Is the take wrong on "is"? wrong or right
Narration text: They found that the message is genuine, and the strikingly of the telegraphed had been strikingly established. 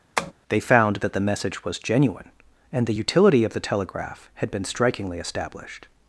wrong